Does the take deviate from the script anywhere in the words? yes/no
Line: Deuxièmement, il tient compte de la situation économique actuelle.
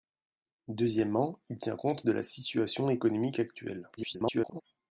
yes